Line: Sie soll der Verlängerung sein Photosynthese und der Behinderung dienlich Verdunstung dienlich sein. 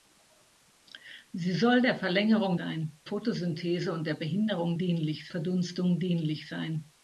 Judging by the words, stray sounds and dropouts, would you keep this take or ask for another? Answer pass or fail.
pass